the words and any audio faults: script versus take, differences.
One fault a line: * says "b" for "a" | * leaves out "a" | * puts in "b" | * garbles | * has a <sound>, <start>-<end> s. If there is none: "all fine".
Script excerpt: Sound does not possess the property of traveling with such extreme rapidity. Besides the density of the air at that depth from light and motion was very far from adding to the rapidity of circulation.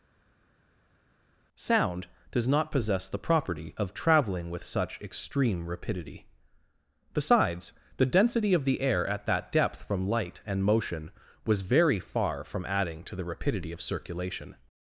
all fine